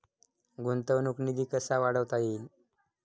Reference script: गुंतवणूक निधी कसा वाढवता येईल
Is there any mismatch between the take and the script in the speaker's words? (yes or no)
no